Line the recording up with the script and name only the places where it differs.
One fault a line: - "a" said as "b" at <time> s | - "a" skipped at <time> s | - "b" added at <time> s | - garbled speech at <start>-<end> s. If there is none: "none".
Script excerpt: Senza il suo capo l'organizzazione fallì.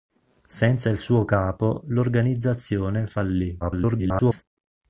- garbled speech at 3.6-4.4 s